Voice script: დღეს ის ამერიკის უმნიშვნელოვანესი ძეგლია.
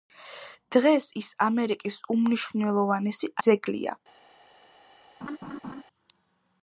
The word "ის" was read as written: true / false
true